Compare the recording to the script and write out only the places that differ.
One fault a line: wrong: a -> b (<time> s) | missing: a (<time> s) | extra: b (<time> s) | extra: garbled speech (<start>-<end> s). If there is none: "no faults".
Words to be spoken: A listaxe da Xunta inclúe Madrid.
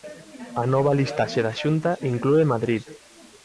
extra: nova (0.7 s)